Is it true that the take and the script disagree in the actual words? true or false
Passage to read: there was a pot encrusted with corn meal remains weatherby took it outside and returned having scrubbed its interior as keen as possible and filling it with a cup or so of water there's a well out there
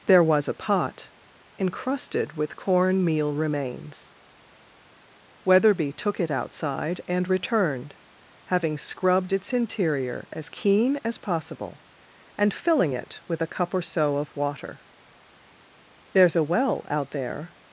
false